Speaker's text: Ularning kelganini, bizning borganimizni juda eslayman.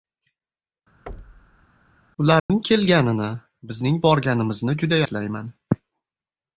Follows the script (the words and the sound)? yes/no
no